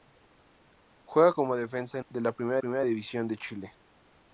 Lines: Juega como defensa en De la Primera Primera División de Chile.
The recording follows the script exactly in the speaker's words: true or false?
true